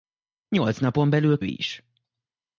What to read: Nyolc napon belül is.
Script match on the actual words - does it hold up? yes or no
yes